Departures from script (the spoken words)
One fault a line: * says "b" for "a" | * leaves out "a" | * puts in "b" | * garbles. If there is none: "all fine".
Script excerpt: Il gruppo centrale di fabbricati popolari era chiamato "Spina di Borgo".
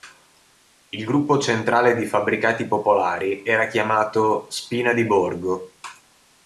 all fine